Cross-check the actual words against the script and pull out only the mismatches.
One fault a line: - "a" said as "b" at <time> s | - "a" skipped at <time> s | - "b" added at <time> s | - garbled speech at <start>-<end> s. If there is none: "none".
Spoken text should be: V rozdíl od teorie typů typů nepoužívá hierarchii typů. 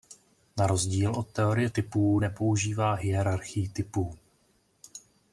- "V" said as "Na" at 0.6 s
- "typů" skipped at 2.2 s